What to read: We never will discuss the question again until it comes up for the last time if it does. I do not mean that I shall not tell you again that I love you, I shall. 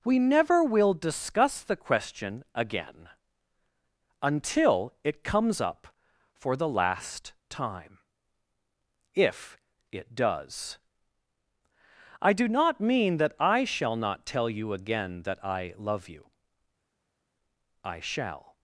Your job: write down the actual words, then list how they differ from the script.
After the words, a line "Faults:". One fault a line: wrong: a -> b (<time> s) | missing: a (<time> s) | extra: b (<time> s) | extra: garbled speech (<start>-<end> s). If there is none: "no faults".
We never will discuss the question again until it comes up for the last time if it does. I do not mean that I shall not tell you again that I love you, I shall.
Faults:
no faults